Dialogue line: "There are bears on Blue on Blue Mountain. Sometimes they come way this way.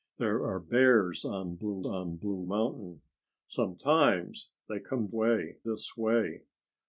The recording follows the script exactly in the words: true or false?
true